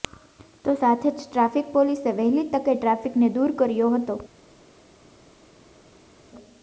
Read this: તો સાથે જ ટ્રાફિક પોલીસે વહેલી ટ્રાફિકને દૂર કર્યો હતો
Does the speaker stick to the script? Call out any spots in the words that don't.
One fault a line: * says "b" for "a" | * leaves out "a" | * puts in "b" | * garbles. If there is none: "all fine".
* puts in "તકે"